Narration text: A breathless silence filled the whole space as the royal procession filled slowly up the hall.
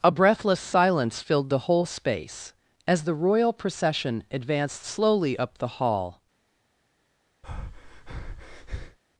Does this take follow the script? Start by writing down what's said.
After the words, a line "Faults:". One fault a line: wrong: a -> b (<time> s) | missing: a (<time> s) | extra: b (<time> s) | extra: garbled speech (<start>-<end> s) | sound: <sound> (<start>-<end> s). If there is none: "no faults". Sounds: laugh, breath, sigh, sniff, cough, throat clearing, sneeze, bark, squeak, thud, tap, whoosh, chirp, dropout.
A breathless silence filled the whole space as the royal procession advanced slowly up the hall.
Faults:
wrong: filled -> advanced (4.3 s)
sound: breath (7.4-9.0 s)